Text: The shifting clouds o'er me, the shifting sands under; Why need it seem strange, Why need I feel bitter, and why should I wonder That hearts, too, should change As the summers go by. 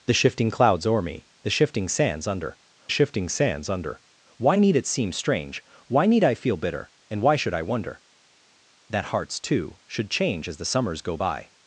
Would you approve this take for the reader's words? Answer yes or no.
no